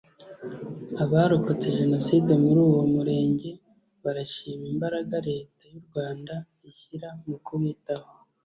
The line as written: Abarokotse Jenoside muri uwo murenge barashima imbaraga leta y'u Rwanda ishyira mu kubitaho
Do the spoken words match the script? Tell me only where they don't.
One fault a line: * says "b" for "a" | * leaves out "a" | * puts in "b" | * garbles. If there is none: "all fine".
all fine